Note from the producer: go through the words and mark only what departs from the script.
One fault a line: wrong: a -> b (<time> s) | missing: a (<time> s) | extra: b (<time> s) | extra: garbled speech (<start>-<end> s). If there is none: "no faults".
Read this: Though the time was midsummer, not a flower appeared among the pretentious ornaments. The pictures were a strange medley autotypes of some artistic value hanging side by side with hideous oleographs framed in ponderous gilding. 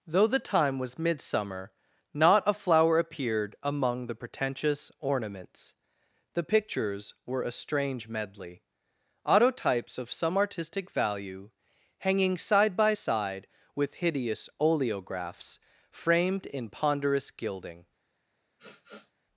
no faults